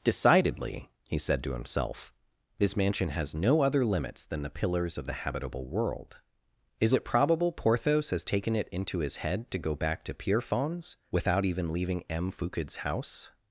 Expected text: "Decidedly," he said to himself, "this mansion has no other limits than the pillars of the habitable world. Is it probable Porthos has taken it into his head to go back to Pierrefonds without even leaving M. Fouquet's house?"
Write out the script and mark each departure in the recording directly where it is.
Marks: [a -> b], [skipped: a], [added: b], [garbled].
"Decidedly," he said to himself, "this mansion has no other limits than the pillars of the habitable world. Is it probable Porthos has taken it into his head to go back to Pierrefonds without even leaving M. Fouquet's house?"